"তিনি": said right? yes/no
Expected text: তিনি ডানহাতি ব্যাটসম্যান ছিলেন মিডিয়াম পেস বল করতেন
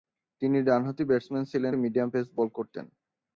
yes